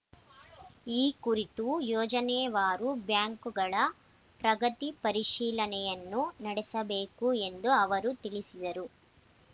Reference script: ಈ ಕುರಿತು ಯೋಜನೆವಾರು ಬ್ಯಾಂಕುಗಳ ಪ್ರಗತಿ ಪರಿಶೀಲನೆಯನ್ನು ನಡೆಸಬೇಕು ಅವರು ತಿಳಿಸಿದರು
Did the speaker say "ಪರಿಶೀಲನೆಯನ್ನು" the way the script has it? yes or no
yes